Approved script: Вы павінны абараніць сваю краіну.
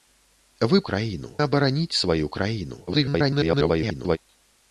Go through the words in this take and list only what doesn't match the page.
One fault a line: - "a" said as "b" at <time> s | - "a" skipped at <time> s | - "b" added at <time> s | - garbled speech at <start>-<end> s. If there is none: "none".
- "павінны" said as "краіну" at 0.9 s
- garbled speech at 2.9-4.2 s